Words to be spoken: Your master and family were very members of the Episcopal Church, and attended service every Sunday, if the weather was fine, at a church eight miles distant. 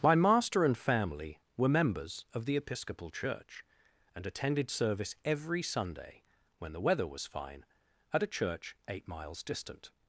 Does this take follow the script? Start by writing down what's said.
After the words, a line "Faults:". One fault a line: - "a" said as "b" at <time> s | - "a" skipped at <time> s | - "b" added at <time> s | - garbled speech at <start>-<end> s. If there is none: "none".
My master and family were members of the Episcopal Church, and attended service every Sunday, when the weather was fine, at a church eight miles distant.
Faults:
- "Your" said as "My" at 0.0 s
- "very" skipped at 1.7 s
- "if" said as "when" at 6.6 s